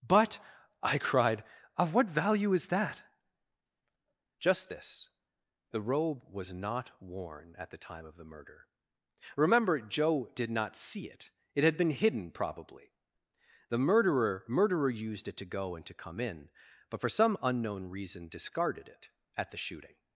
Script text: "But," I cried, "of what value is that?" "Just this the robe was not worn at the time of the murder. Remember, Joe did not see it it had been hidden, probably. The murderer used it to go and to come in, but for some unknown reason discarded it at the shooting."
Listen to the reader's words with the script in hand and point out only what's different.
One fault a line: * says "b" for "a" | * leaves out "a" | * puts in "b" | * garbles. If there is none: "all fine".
* puts in "murderer"